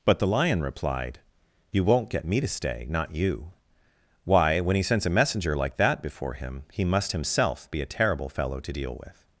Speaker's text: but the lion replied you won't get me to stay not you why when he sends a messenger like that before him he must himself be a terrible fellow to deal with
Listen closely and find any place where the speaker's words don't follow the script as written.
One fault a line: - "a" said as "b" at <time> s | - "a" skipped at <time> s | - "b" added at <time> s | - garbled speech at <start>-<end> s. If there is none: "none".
none